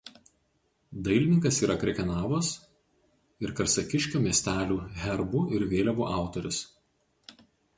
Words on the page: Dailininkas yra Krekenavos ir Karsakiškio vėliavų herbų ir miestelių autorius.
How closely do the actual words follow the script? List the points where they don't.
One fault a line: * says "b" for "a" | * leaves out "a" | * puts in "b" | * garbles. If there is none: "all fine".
* says "miestelių" for "vėliavų"
* says "vėliavų" for "miestelių"